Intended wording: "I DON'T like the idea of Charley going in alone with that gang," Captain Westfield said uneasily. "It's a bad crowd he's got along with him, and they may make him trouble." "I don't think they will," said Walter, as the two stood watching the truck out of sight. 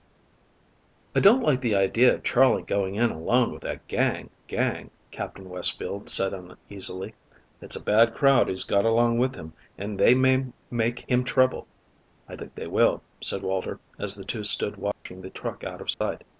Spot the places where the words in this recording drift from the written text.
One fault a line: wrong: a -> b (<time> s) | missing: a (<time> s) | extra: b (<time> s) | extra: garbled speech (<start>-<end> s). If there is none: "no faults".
extra: gang (4.4 s)
missing: don't (12.4 s)